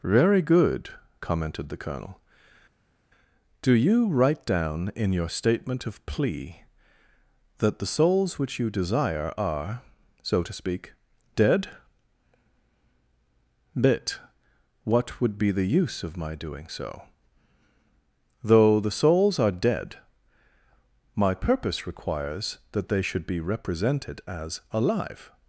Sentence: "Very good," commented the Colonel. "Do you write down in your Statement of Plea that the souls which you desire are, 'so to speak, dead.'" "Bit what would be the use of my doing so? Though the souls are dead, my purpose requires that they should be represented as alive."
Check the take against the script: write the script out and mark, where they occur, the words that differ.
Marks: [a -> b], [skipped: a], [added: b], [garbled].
"Very good," commented the Colonel. "Do you write down in your Statement of Plea that the souls which you desire are, 'so to speak, dead.'" "Bit what would be the use of my doing so? Though the souls are dead, my purpose requires that they should be represented as alive."